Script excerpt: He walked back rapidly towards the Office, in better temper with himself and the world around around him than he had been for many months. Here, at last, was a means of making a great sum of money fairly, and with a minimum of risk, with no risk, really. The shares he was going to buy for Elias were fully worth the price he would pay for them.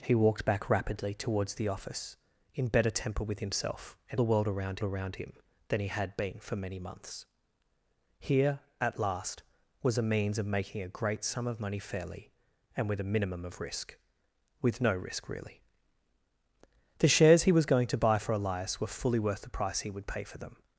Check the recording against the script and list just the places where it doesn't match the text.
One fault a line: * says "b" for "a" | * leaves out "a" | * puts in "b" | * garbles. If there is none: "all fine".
all fine